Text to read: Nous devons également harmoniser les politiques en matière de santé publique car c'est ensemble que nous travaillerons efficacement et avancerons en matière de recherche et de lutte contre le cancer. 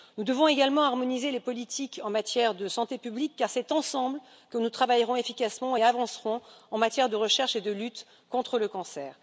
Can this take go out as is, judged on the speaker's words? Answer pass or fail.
pass